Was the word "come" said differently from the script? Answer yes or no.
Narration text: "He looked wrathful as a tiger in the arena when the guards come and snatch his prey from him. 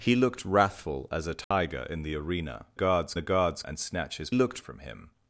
yes